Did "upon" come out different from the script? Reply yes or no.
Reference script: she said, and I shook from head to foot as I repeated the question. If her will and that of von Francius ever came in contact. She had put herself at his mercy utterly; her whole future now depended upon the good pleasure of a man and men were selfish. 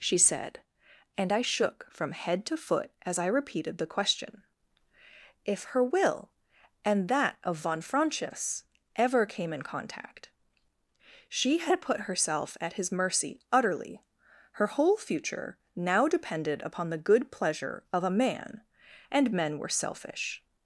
no